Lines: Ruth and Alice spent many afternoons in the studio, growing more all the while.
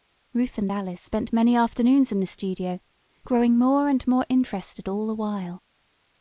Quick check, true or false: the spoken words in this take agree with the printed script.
false